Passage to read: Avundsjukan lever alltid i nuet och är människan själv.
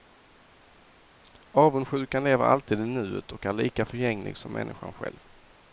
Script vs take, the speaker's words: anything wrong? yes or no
yes